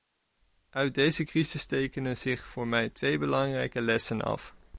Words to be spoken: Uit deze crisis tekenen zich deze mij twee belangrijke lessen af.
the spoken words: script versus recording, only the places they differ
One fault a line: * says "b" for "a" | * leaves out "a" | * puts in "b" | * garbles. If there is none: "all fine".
* says "voor" for "deze"